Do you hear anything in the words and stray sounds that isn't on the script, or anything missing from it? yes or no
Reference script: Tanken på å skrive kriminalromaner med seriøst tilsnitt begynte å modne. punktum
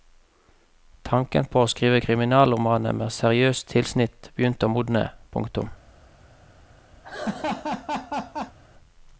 yes